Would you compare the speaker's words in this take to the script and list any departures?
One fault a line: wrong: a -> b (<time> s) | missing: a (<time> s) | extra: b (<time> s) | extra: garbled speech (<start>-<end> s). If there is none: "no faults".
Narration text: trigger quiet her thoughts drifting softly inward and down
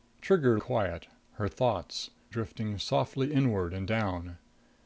no faults